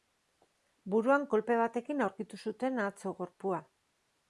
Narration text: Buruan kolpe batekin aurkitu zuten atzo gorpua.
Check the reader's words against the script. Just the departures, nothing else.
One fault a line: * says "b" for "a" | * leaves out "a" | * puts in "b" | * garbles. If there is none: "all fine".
all fine